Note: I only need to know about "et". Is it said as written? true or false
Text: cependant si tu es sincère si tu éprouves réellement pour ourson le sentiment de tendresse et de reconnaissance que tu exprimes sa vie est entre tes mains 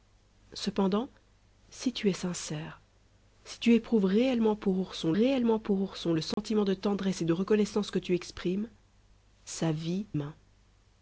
true